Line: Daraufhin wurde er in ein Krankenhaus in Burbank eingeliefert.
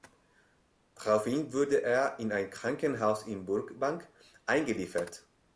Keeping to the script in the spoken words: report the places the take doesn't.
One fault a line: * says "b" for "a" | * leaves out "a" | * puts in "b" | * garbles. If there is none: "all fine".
all fine